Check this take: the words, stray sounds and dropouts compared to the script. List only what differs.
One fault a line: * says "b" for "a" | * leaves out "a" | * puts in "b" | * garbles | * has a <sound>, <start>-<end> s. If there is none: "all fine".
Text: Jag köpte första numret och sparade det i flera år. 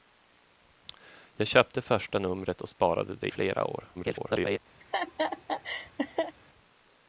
* leaves out "i"
* garbles
* has a laugh, 4.8-6.3 s